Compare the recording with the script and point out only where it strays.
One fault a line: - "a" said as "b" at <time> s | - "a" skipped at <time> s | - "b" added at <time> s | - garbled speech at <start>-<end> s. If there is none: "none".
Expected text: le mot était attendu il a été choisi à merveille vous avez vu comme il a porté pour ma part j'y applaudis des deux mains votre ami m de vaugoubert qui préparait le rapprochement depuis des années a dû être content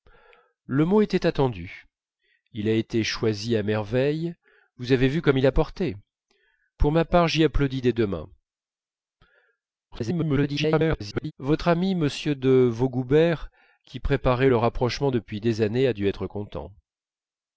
- garbled speech at 9.9-11.3 s